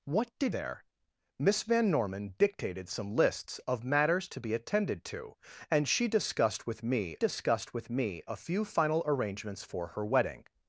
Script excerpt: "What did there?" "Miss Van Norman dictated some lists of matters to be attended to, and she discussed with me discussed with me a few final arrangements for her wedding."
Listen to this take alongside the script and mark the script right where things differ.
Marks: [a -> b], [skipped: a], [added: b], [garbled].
"What did there?" "Miss Van Norman dictated some lists of matters to be attended to, and she discussed with me discussed with me a few final arrangements for her wedding."